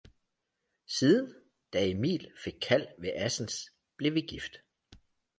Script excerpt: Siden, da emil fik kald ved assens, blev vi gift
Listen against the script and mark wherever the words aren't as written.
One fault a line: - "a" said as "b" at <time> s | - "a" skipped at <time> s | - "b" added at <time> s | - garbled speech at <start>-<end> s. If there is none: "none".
none